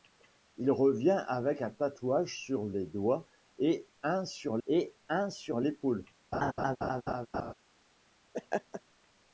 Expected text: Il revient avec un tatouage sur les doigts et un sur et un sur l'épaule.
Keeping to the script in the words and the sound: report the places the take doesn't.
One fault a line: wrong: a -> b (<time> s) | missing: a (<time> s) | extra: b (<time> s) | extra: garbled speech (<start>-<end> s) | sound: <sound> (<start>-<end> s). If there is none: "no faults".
sound: laugh (6.3-7.5 s)
sound: laugh (8.3-8.8 s)